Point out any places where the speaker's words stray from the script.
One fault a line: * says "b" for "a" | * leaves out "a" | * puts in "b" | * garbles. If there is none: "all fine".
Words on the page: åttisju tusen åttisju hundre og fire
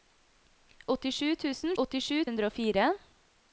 all fine